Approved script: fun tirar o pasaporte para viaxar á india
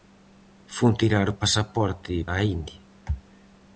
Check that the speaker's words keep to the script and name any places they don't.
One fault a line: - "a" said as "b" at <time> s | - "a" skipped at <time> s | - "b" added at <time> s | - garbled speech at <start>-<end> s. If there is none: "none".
- "para viaxar" skipped at 2.1 s